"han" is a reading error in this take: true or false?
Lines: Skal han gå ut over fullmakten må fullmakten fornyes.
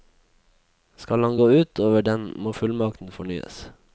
false